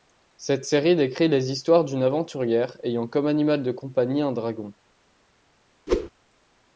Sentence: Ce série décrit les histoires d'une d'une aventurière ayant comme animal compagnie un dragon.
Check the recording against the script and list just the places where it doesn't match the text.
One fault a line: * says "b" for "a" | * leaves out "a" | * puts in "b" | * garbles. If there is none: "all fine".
* says "Cette" for "Ce"
* leaves out "d'une"
* puts in "de"